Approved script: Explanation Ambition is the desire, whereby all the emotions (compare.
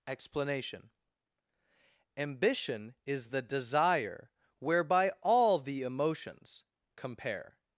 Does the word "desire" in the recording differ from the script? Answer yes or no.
no